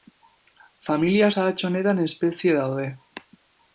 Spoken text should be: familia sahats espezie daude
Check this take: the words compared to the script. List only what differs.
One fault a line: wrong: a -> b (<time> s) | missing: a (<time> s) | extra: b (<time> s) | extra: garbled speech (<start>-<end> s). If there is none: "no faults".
extra: honetan (1.7 s)